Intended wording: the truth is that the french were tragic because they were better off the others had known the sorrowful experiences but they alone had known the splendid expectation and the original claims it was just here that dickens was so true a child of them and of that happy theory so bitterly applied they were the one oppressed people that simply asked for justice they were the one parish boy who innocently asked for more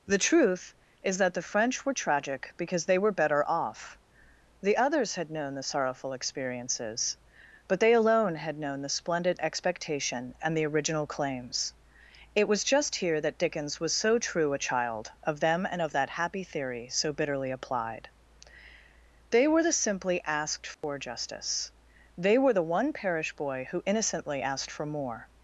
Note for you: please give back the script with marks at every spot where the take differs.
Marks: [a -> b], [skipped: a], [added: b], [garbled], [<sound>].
the truth is that the french were tragic because they were better off the others had known the sorrowful experiences but they alone had known the splendid expectation and the original claims it was just here that dickens was so true a child of them and of that happy theory so bitterly applied they were the [skipped: one oppressed people that] simply asked for [dropout] justice they were the one parish boy who innocently asked for more